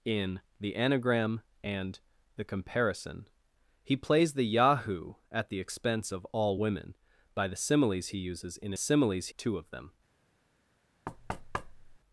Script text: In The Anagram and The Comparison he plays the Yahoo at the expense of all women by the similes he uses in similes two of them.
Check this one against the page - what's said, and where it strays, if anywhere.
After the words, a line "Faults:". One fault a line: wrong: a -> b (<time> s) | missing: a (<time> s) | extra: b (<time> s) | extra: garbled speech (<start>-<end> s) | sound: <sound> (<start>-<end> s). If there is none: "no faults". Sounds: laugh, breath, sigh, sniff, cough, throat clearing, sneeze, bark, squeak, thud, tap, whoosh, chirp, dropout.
In The Anagram and The Comparison he plays the Yahoo at the expense of all women by the similes he uses in similes two of them.
Faults:
sound: thud (11.1-12.0 s)